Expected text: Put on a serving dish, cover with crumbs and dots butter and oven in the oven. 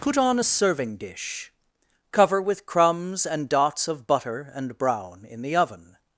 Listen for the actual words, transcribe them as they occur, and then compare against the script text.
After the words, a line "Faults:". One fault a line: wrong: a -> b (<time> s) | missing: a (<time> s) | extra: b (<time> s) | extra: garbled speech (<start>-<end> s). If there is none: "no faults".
Put on a serving dish, cover with crumbs and dots of butter and brown in the oven.
Faults:
extra: of (3.9 s)
wrong: oven -> brown (4.8 s)